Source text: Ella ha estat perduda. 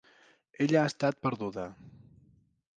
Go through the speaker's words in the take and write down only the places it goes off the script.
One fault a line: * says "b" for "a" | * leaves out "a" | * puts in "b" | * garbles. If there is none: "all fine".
all fine